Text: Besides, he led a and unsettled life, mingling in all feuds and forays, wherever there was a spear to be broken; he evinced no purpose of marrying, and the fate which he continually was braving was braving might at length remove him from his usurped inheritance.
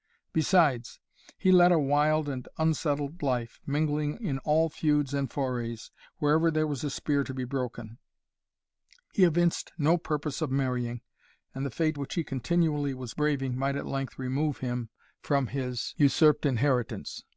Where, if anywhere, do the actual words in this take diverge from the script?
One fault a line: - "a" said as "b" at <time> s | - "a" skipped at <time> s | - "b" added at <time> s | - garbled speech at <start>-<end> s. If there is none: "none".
- "wild" added at 1.8 s
- "was braving" skipped at 13.6 s